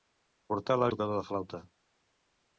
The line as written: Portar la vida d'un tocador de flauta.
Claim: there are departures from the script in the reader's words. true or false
true